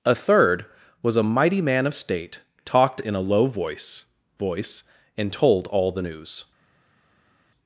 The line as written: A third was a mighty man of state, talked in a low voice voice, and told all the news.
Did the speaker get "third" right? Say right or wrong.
right